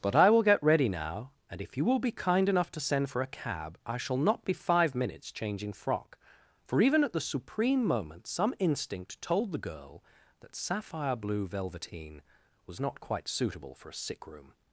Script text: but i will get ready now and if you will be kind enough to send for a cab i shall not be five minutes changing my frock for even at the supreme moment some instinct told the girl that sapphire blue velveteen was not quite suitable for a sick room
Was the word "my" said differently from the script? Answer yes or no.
yes